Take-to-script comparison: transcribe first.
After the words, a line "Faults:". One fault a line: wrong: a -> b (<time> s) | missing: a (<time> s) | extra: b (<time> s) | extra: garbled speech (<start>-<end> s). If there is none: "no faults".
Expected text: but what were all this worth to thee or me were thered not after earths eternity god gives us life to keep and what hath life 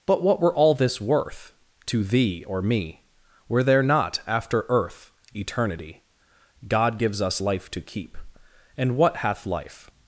but what were all this worth to thee or me were there not after earth eternity god gives us life to keep and what hath life
Faults:
wrong: thered -> there (3.6 s)
wrong: earths -> earth (4.7 s)